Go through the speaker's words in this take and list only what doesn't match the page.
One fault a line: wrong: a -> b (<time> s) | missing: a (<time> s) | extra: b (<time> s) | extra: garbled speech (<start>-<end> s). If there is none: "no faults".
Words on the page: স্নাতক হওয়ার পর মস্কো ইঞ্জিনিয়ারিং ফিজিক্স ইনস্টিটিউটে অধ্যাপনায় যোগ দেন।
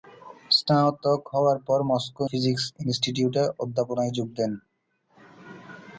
missing: ইঞ্জিনিয়ারিং (2.2 s)